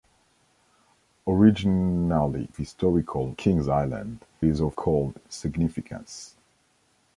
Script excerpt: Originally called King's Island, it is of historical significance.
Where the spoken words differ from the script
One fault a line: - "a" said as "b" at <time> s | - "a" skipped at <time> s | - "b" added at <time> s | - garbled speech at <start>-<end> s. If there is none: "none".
- "called" said as "historical" at 2.6 s
- "it" skipped at 4.2 s
- "historical" said as "called" at 4.7 s